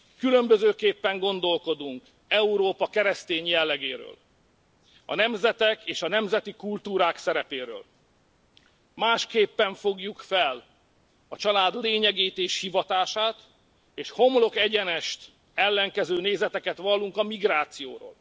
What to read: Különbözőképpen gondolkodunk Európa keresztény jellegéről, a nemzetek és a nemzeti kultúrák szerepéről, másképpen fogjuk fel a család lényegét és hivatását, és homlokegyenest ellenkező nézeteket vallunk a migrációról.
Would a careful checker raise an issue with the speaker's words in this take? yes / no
no